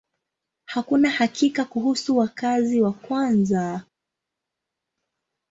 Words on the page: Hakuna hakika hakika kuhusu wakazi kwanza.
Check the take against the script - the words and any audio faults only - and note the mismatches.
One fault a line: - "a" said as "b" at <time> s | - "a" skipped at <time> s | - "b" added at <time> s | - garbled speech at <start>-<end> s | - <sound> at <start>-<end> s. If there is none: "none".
- "hakika" skipped at 1.6 s
- "wa" added at 2.8 s